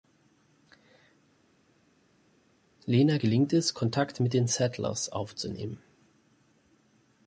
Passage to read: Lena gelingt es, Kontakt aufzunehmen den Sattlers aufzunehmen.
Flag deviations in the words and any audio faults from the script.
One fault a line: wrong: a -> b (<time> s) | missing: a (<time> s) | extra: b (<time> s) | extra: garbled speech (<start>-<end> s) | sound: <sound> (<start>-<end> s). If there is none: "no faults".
wrong: aufzunehmen -> mit (4.2 s)